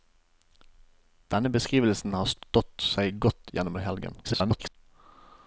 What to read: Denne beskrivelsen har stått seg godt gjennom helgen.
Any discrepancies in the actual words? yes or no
yes